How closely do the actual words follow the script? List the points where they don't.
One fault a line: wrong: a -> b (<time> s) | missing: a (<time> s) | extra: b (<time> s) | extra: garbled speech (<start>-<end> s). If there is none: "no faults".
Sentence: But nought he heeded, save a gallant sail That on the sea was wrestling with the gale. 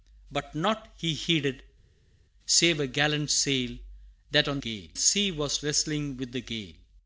wrong: the -> gale (4.6 s)